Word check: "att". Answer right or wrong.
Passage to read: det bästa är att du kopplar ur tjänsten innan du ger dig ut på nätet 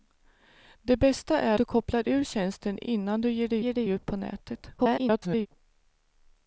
wrong